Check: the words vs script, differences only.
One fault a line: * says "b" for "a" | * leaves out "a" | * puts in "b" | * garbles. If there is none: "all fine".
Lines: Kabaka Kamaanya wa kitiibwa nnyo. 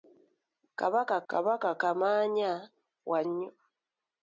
* puts in "kabaka"
* leaves out "kitiibwa"